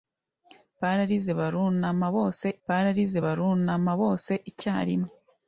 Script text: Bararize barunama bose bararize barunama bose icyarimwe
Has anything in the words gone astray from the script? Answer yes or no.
no